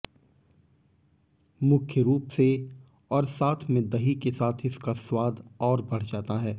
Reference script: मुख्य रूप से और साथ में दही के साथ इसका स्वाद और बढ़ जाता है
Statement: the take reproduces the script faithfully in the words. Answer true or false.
true